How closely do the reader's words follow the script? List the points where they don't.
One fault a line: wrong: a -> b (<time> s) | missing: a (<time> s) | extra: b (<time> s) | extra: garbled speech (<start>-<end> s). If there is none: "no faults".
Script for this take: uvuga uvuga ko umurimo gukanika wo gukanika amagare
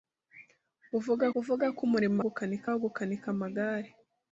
no faults